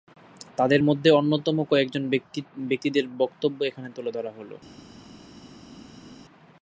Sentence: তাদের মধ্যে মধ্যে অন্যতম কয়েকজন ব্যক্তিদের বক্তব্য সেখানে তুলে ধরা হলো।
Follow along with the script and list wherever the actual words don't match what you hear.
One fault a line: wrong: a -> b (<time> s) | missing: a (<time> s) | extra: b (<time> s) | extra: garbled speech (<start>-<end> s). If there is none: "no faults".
missing: মধ্যে (1.1 s)
wrong: সেখানে -> এখানে (3.6 s)